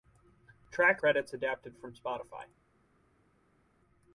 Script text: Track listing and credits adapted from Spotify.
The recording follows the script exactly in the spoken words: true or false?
false